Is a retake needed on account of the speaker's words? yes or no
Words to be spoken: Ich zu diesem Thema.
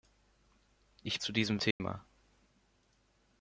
no